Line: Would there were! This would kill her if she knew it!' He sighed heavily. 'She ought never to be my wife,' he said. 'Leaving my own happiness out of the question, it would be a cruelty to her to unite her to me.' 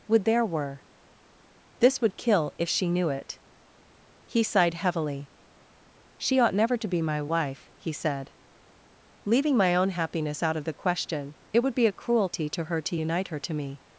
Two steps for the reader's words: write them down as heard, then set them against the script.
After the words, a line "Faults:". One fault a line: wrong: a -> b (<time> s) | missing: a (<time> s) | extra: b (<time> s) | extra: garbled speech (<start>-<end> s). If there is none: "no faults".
Would there were! This would kill if she knew it!' He sighed heavily. 'She ought never to be my wife,' he said. 'Leaving my own happiness out of the question, it would be a cruelty to her to unite her to me.'
Faults:
missing: her (2.5 s)